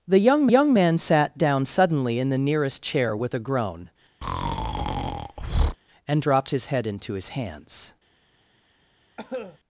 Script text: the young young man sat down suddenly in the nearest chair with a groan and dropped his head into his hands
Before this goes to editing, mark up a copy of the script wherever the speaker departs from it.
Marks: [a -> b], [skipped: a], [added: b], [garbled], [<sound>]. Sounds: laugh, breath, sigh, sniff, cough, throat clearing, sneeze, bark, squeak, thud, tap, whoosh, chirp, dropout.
the young young man sat down suddenly in the nearest chair with a groan [breath] and dropped his head into his hands [cough]